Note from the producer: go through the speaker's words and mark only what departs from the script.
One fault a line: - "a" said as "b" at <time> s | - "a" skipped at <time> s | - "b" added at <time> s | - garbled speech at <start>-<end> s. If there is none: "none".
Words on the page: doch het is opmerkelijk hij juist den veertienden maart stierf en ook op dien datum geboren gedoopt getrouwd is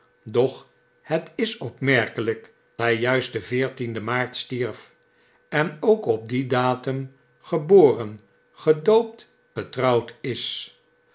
none